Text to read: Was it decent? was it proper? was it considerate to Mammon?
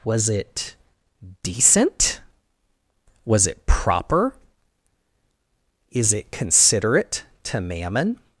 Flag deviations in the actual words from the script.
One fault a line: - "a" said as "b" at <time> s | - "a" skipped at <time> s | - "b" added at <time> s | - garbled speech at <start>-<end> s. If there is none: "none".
- "was" said as "is" at 5.9 s